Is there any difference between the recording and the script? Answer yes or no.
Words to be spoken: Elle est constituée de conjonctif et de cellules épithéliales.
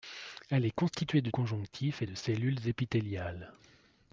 no